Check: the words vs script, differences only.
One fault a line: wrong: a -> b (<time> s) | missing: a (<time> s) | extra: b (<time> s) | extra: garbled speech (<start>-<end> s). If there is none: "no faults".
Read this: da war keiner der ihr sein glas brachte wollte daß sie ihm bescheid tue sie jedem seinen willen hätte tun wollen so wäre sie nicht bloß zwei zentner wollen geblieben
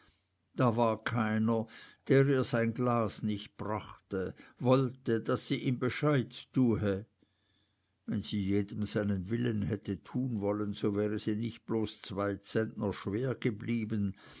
extra: nicht (3.2 s)
extra: wenn (8.1 s)
wrong: wollen -> schwer (12.9 s)